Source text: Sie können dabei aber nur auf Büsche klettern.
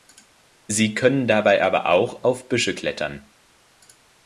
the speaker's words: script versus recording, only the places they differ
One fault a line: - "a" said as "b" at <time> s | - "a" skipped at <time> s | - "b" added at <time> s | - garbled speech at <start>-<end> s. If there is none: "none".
- "nur" said as "auch" at 1.9 s